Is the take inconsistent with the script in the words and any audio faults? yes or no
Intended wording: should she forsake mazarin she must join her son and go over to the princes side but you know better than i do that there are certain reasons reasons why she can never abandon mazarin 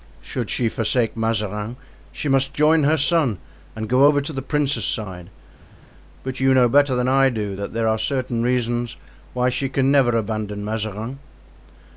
yes